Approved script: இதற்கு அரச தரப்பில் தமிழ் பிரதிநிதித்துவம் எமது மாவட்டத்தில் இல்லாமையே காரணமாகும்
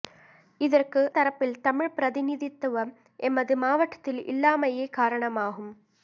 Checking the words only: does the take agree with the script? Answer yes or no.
no